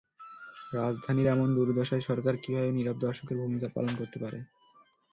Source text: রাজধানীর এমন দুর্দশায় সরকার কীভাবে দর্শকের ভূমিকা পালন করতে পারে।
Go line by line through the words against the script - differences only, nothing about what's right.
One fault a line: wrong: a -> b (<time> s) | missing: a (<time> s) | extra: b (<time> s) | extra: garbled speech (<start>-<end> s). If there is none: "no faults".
extra: নীরব (2.7 s)